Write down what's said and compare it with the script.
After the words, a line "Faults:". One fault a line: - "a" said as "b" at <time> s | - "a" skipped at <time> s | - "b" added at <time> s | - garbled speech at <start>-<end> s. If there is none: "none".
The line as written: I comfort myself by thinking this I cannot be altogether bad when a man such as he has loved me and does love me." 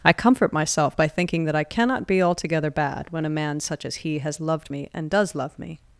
I comfort myself by thinking that I cannot be altogether bad when a man such as he has loved me and does love me."
Faults:
- "this" said as "that" at 1.4 s